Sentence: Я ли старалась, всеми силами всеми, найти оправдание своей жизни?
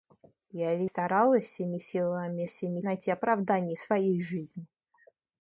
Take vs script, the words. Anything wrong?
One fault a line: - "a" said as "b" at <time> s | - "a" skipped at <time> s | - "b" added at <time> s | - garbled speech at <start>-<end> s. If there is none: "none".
none